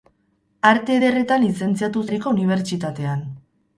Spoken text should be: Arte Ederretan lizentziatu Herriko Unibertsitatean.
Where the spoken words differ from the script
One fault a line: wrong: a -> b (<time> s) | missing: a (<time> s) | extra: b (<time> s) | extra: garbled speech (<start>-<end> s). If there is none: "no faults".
no faults